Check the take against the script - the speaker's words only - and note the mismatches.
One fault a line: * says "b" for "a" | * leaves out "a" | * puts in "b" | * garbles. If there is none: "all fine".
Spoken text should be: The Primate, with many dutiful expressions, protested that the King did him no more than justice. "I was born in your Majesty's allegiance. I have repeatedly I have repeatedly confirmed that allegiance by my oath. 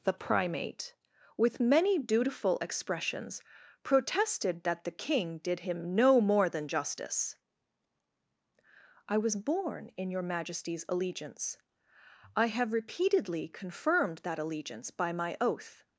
* leaves out "I have repeatedly"